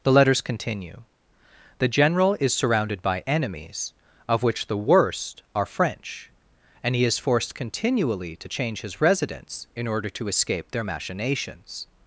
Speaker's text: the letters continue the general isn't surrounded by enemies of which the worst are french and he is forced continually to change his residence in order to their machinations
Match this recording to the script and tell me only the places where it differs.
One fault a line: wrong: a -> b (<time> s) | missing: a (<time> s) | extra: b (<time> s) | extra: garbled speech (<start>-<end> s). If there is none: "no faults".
wrong: isn't -> is (2.4 s)
extra: escape (10.3 s)